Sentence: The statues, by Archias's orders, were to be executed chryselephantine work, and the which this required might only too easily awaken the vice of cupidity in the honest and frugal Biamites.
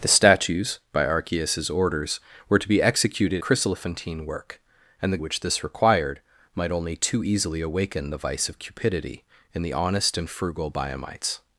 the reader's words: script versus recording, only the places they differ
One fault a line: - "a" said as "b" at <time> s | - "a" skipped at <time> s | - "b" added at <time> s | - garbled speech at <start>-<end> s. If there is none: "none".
none